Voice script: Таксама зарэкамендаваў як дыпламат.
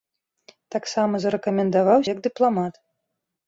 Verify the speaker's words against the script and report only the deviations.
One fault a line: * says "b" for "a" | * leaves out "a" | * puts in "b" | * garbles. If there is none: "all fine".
all fine